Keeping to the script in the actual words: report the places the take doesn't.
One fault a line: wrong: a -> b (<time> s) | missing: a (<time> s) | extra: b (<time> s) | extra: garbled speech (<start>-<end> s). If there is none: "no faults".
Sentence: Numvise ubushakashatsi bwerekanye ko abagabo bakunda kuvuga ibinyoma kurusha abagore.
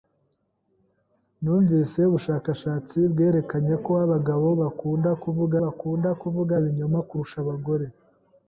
extra: bakunda kuvuga (5.6 s)